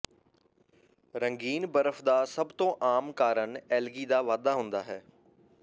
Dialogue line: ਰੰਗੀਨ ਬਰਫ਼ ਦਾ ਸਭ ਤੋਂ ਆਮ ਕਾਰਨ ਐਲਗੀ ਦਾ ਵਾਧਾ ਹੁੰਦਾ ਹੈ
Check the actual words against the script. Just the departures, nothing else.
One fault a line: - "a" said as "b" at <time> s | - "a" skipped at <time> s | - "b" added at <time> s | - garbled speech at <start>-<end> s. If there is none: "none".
none